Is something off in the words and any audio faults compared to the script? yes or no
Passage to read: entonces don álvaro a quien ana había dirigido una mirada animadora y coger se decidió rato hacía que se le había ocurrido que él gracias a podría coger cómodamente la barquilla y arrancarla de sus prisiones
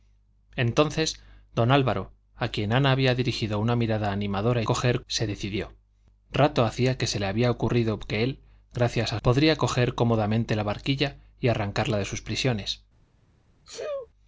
yes